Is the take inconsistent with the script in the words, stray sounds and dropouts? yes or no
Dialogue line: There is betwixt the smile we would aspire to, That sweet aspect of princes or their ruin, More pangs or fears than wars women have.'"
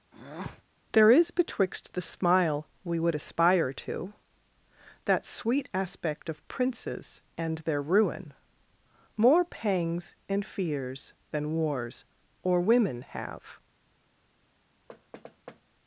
yes